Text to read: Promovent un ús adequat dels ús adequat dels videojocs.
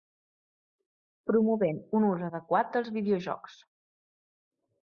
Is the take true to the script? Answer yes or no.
no